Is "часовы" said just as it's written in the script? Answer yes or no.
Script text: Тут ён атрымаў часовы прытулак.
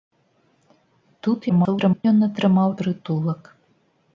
no